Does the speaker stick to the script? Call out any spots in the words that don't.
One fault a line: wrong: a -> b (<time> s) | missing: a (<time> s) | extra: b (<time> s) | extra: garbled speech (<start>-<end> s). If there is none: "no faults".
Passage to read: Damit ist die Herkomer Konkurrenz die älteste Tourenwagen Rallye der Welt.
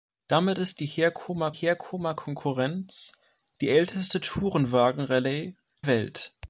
extra: Herkomer (1.5 s)
missing: der (5.6 s)